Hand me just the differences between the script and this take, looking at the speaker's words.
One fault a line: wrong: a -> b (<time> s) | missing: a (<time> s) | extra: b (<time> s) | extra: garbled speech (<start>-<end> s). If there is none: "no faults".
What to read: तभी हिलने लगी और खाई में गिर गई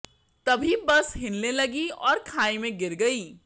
extra: बस (0.8 s)